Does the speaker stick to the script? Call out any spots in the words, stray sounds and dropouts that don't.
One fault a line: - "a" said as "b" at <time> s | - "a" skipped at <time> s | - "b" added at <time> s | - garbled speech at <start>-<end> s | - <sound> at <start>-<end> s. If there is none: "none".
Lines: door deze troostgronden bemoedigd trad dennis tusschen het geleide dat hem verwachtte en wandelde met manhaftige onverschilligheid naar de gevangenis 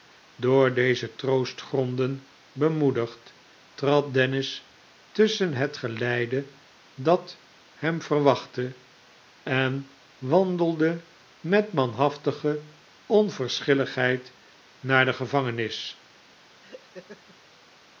- laugh at 16.6-17.4 s